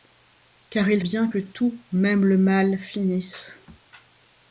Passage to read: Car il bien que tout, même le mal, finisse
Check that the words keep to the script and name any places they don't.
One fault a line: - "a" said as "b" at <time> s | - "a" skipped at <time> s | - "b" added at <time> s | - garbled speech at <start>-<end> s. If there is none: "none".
none